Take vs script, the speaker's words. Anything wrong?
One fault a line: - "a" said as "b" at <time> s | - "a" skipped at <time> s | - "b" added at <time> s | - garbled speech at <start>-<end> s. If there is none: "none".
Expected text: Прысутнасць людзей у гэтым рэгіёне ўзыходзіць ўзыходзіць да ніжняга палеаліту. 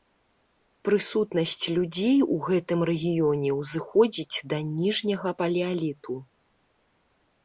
- "ўзыходзіць" skipped at 4.4 s